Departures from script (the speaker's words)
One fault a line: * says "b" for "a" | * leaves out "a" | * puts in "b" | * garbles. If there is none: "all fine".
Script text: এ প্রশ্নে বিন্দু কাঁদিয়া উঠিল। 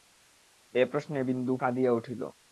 all fine